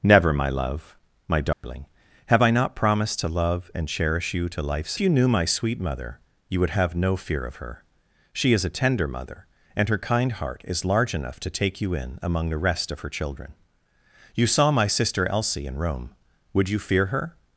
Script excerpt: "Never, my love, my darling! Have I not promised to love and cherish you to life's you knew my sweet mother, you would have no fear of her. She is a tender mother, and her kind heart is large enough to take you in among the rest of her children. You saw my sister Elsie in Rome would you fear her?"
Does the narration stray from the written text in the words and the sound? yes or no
yes